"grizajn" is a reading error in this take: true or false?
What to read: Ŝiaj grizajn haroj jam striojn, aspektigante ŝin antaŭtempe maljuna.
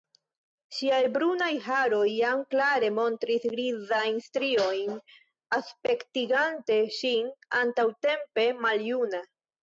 true